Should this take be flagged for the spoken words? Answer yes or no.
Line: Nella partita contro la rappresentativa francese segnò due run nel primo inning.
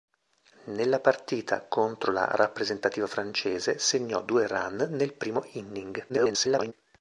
yes